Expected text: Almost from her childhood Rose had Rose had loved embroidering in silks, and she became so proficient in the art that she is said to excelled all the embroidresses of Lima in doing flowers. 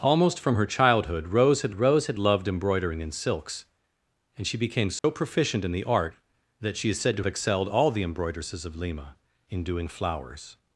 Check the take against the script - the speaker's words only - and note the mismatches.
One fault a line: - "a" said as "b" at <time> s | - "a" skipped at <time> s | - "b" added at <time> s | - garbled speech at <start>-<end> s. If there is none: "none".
none